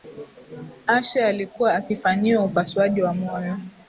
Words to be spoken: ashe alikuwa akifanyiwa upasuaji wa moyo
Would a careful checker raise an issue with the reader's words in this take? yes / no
no